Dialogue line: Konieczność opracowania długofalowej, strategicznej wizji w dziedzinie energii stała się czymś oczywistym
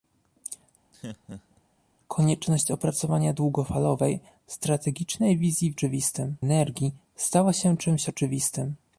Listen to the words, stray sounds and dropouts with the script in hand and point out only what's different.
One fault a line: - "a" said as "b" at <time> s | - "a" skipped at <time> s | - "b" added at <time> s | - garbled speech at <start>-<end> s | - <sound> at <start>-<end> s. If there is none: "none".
- laugh at 0.9-1.6 s
- "dziedzinie" said as "oczywistym" at 5.7 s